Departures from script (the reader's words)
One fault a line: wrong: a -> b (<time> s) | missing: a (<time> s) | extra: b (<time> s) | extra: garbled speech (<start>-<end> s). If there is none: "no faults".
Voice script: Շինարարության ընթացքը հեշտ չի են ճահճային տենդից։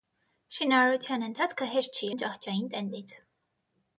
no faults